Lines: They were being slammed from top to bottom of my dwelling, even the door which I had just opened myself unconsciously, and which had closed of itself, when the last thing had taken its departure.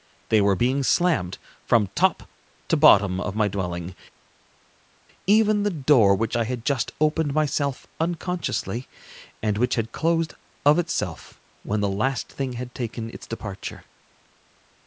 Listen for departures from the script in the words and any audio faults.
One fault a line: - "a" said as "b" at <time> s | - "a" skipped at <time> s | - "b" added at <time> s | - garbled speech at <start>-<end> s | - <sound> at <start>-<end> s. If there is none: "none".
none